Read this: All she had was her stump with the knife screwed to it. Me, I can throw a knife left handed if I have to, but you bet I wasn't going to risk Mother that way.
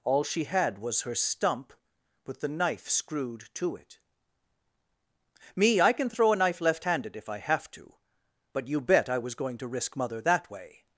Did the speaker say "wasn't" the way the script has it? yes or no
no